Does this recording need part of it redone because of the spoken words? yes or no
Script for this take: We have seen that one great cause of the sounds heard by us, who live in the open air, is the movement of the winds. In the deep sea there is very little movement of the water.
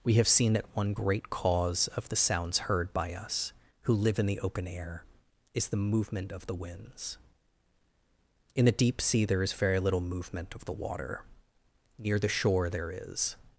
yes